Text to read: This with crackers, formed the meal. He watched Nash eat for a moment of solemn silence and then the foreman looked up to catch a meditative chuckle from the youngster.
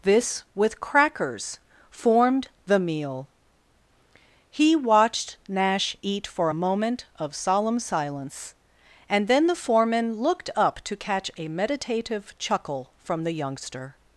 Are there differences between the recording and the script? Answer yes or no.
no